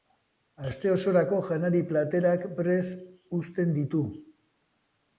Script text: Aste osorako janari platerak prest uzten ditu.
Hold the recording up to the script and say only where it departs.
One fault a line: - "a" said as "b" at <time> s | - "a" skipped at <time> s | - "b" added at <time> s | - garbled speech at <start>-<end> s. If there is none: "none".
none